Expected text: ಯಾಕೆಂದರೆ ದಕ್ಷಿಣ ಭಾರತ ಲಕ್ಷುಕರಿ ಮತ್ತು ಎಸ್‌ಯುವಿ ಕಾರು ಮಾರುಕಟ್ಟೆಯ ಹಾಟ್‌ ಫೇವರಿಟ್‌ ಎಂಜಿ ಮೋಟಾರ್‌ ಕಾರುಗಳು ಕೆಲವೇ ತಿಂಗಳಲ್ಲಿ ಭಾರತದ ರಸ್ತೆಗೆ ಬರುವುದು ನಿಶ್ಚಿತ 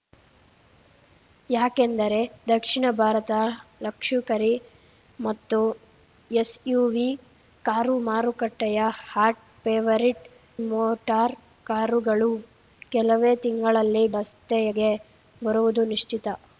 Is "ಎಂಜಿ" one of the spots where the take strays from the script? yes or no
yes